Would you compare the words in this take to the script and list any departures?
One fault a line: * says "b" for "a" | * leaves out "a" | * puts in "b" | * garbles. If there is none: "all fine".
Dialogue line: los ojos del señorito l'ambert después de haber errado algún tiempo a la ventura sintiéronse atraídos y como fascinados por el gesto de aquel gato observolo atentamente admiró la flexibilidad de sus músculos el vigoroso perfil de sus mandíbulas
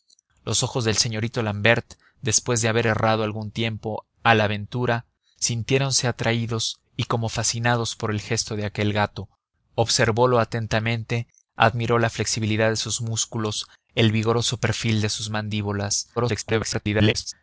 * garbles